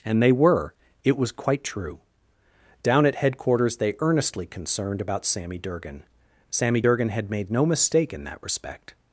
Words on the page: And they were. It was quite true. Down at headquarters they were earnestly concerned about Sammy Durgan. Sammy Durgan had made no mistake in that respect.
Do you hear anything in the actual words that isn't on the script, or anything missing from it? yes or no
yes